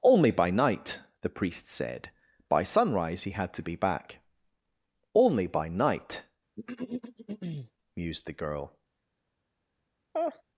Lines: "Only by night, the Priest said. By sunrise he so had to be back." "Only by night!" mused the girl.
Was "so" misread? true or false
true